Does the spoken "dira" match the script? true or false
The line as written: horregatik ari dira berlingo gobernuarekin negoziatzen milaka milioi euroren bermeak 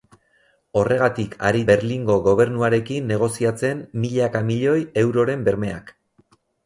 false